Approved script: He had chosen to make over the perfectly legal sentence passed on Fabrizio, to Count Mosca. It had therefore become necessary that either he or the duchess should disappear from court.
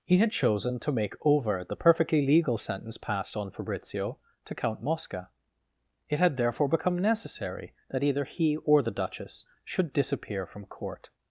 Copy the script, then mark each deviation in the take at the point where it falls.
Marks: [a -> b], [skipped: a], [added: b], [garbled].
He had chosen to make over the perfectly legal sentence passed on Fabrizio, to Count Mosca. It had therefore become necessary that either he or the duchess should disappear from court.